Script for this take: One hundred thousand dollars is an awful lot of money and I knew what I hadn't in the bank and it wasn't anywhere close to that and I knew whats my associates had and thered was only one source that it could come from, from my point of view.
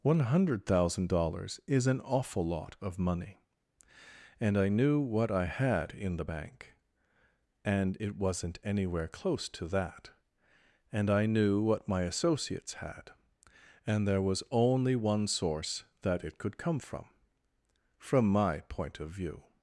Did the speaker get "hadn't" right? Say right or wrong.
wrong